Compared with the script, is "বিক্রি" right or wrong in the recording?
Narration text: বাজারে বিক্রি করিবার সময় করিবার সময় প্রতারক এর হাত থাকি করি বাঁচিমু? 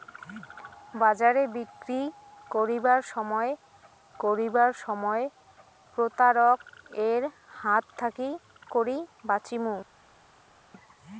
right